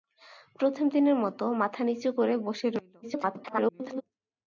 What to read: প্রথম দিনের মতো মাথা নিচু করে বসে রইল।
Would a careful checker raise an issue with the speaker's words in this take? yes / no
yes